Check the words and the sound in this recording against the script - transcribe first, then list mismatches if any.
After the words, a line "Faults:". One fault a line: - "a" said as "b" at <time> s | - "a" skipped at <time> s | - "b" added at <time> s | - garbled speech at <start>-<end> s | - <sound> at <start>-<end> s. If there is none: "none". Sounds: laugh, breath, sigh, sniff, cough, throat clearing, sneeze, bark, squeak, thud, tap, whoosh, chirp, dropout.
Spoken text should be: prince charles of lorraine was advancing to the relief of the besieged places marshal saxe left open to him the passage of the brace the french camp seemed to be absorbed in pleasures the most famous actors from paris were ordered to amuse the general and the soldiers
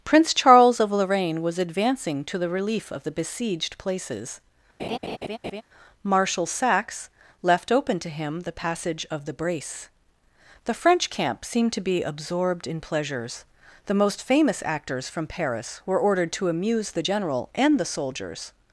prince charles of lorraine was advancing to the relief of the besieged places marshal saxe left open to him the passage of the brace the french camp seemed to be absorbed in pleasures the most famous actors from paris were ordered to amuse the general and the soldiers
Faults:
- laugh at 4.8-5.6 s